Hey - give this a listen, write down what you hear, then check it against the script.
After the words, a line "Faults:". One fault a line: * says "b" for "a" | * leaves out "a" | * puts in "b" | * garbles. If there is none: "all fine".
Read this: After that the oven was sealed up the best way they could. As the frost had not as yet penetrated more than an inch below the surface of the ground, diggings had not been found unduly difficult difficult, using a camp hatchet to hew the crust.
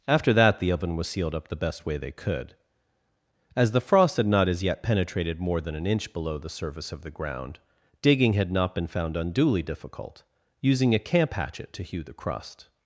After that the oven was sealed up the best way they could. As the frost had not as yet penetrated more than an inch below the surface of the ground, digging had not been found unduly difficult, using a camp hatchet to hew the crust.
Faults:
* says "digging" for "diggings"
* leaves out "difficult"